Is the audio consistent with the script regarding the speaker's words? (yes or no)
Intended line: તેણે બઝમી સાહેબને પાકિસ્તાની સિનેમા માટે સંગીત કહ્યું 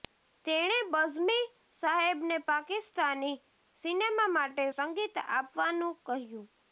no